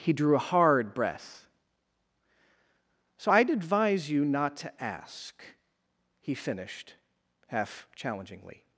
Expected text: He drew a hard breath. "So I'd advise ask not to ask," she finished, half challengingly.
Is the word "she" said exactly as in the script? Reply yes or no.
no